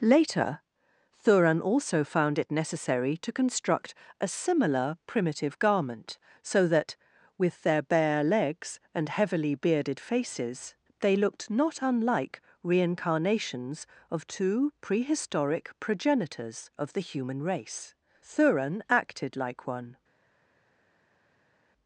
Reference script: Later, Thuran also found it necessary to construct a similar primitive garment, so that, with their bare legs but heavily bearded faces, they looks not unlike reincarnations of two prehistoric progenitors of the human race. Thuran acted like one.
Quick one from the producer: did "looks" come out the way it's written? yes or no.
no